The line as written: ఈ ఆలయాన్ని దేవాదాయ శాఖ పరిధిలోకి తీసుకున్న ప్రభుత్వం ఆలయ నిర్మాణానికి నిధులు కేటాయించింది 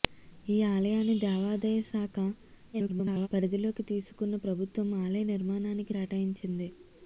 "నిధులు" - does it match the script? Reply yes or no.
no